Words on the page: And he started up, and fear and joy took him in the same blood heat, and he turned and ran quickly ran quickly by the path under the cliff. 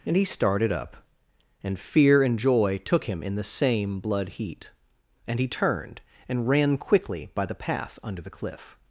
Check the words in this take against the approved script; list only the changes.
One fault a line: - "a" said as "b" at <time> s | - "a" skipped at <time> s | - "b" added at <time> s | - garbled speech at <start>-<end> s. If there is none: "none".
- "ran quickly" skipped at 7.3 s